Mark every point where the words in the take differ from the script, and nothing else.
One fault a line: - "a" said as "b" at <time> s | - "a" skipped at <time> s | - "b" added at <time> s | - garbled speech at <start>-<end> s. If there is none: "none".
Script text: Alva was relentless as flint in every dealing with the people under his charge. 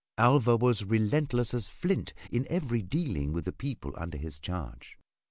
none